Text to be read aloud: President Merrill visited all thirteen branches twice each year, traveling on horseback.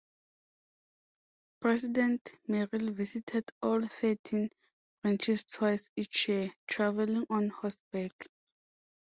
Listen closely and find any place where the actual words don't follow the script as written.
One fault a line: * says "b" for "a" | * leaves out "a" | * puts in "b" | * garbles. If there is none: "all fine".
all fine